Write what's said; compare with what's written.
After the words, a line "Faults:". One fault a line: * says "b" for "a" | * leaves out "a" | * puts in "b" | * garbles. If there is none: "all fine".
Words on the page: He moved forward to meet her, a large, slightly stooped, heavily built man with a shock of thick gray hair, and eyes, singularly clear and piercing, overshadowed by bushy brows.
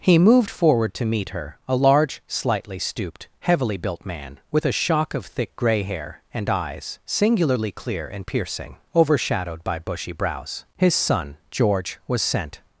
He moved forward to meet her, a large, slightly stooped, heavily built man with a shock of thick gray hair, and eyes, singularly clear and piercing, overshadowed by bushy brows. His son, George, was sent
Faults:
* puts in "His son George was sent"